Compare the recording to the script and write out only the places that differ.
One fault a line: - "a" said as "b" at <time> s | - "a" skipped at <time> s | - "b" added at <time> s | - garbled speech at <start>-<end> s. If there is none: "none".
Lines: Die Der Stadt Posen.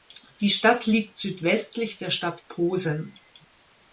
- "Stadt liegt südwestlich" added at 0.5 s